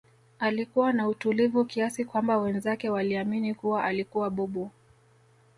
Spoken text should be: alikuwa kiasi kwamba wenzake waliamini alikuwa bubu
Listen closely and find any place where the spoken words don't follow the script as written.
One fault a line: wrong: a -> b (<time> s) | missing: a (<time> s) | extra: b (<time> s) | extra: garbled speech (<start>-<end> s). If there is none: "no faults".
extra: na utulivu (0.9 s)
extra: kuwa (3.5 s)